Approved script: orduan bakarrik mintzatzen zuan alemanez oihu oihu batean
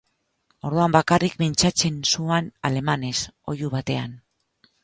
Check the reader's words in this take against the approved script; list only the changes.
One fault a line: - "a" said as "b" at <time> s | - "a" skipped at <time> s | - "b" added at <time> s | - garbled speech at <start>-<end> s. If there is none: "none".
- "oihu" skipped at 3.7 s